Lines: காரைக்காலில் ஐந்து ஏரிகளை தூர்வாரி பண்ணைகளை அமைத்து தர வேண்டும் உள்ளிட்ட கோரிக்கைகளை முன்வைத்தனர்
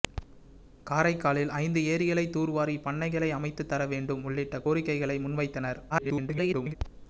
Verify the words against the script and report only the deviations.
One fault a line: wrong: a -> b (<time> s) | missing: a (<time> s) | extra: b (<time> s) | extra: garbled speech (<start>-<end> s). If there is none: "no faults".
extra: garbled speech (5.9-6.7 s)